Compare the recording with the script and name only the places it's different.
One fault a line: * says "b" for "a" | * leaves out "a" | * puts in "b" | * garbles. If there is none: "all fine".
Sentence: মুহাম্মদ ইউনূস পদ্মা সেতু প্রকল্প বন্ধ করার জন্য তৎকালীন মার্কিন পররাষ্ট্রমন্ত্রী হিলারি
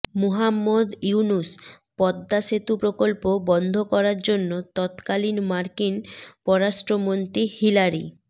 all fine